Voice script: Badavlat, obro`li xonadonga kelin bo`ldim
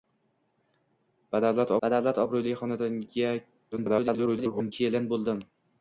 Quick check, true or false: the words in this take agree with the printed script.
false